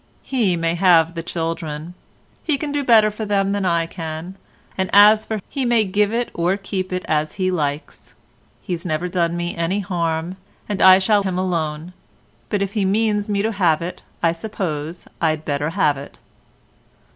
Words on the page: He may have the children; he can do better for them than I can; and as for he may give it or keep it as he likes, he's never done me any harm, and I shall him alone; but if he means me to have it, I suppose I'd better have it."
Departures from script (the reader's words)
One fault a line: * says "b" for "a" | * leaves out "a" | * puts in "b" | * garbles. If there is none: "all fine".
all fine